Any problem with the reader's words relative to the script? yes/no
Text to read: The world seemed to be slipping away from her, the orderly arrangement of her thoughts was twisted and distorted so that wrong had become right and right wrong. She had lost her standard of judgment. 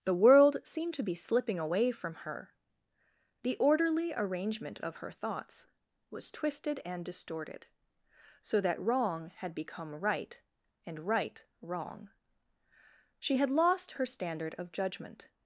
no